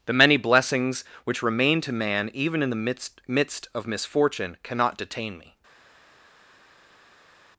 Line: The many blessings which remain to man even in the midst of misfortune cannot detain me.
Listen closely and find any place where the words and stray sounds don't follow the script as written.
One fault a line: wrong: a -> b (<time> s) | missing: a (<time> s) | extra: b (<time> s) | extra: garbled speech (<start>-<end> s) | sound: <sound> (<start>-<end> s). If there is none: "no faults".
extra: midst (3.3 s)